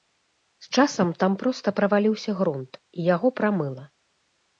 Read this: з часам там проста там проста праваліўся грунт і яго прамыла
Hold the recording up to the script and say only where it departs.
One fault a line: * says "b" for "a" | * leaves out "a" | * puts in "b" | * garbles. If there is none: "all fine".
* leaves out "там проста"